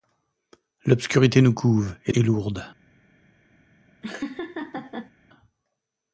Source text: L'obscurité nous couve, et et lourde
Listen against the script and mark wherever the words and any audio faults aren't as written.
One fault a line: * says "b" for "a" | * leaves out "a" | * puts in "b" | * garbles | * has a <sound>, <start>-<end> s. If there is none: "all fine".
* has a laugh, 4.0-5.1 s